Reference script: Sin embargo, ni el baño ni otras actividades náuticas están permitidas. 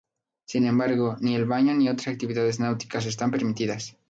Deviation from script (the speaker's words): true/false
false